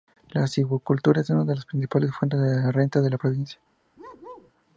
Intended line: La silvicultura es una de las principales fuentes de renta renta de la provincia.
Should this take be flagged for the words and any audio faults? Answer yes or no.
yes